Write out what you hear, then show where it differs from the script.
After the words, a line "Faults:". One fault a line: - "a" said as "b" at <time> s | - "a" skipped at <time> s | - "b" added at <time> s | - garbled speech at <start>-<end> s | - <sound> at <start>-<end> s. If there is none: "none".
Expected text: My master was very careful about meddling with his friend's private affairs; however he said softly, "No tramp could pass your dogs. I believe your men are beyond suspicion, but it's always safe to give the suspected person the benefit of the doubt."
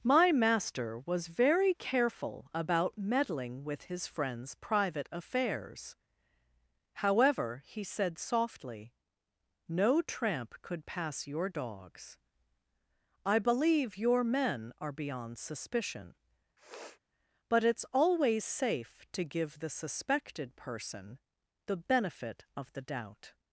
My master was very careful about meddling with his friend's private affairs; however he said softly, "No tramp could pass your dogs. I believe your men are beyond suspicion, but it's always safe to give the suspected person the benefit of the doubt."
Faults:
- sniff at 16.6-17.0 s